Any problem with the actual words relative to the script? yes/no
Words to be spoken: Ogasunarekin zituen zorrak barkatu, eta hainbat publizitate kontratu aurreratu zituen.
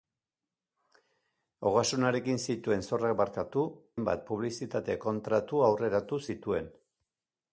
yes